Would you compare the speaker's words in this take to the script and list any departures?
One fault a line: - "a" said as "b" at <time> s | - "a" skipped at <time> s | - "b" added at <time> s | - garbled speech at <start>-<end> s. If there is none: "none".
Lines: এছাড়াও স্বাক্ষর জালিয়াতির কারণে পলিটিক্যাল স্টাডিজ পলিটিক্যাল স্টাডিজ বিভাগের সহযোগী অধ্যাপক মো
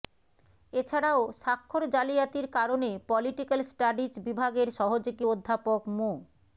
- "পলিটিক্যাল স্টাডিজ" skipped at 4.1 s